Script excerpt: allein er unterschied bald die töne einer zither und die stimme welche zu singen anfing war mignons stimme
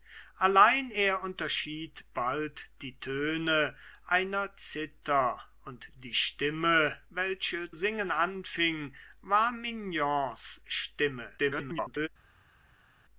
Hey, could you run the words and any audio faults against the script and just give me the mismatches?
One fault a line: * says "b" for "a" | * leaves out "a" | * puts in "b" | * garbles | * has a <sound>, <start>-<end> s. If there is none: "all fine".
* leaves out "zu"
* garbles